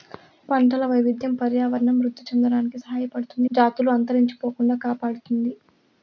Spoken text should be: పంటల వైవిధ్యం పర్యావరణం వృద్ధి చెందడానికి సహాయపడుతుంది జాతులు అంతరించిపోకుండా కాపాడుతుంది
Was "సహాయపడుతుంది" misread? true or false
false